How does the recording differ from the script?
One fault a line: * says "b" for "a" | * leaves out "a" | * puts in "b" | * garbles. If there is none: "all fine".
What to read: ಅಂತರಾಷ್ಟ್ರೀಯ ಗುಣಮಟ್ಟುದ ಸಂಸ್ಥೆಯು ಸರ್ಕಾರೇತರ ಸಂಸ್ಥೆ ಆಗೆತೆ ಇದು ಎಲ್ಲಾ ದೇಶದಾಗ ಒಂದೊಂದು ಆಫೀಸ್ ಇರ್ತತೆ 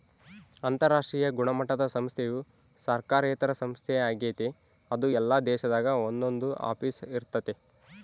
* says "ಅದು" for "ಇದು"